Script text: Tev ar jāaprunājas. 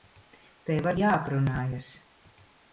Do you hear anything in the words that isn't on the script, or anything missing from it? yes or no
no